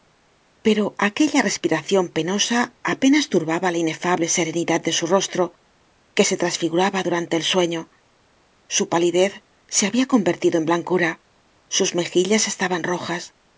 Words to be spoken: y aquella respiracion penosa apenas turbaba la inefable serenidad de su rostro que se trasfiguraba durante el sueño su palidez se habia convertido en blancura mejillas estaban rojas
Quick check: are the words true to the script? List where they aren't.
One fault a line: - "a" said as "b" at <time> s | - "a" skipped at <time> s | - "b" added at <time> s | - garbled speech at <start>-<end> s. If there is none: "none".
- "y" said as "pero" at 0.7 s
- "sus" added at 11.8 s